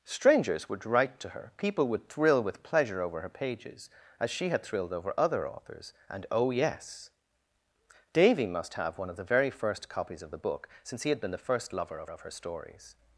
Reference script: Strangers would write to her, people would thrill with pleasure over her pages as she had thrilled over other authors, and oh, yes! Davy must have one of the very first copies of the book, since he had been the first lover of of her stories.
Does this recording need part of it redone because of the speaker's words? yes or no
no